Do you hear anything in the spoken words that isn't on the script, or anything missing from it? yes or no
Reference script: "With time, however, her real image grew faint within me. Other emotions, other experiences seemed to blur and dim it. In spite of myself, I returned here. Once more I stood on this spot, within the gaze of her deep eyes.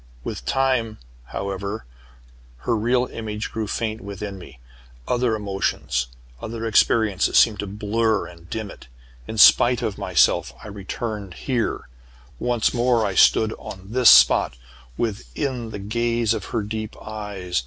no